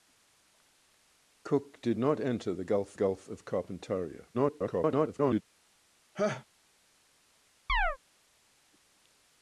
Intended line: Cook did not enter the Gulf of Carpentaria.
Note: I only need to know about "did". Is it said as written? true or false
true